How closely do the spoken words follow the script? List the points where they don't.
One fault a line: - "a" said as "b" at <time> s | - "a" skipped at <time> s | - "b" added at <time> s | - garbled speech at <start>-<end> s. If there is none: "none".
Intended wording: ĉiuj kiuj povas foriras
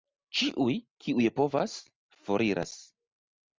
none